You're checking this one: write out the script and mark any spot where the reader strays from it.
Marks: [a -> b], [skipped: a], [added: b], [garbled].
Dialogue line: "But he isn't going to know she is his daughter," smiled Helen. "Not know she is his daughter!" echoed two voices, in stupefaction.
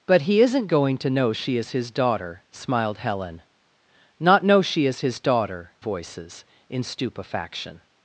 "But he isn't going to know she is his daughter," smiled Helen. "Not know she is his daughter!" [skipped: echoed two] voices, in stupefaction.